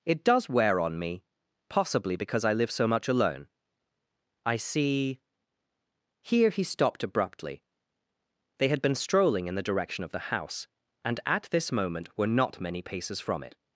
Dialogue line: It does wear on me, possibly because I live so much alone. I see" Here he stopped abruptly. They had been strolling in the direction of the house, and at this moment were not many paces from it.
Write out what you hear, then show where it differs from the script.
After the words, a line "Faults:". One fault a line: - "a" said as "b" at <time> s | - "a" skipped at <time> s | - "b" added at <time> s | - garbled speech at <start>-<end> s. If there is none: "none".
It does wear on me, possibly because I live so much alone. I see" Here he stopped abruptly. They had been strolling in the direction of the house, and at this moment were not many paces from it.
Faults:
none